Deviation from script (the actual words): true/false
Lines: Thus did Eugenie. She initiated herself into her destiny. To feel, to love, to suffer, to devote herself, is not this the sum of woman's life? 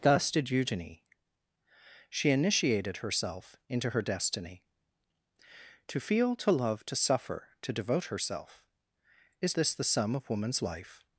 true